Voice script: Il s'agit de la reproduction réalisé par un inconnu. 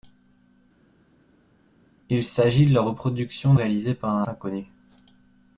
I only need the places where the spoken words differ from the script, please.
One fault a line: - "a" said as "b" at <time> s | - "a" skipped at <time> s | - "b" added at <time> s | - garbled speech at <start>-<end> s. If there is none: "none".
none